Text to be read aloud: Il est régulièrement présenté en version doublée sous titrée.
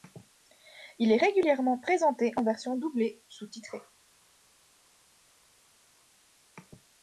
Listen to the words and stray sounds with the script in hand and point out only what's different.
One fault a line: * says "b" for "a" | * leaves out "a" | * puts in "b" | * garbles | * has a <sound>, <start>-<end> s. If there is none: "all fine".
all fine